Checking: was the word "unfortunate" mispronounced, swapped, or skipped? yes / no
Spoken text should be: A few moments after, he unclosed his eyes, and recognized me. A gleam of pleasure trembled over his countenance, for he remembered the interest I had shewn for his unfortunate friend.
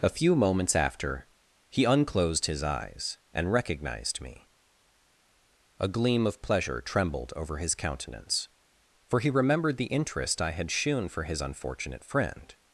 no